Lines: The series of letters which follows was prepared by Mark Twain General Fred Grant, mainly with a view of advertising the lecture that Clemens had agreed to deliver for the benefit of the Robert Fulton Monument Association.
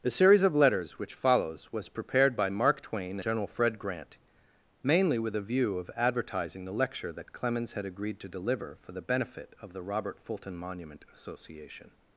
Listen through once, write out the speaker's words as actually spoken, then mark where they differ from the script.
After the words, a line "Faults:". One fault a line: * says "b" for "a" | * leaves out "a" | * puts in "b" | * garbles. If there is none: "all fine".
The series of letters which follows was prepared by Mark Twain General Fred Grant, mainly with a view of advertising the lecture that Clemens had agreed to deliver for the benefit of the Robert Fulton Monument Association.
Faults:
all fine